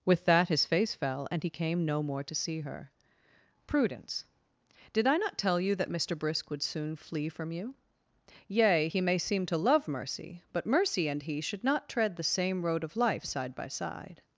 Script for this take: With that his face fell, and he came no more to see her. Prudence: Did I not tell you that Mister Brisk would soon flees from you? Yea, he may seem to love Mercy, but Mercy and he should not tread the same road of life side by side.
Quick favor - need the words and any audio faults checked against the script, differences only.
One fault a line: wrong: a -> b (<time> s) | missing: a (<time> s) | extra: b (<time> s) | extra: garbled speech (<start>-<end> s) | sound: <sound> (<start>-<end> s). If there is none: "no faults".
wrong: flees -> flee (7.0 s)